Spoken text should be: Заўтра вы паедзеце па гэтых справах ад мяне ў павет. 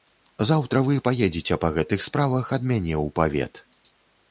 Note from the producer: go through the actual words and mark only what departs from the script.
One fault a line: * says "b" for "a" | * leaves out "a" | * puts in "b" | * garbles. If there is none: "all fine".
all fine